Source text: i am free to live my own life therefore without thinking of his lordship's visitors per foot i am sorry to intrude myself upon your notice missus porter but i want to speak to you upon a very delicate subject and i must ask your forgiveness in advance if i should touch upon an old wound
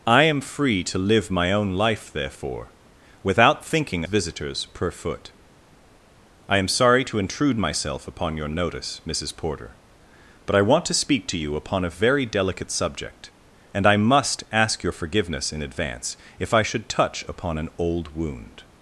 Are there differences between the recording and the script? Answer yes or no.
yes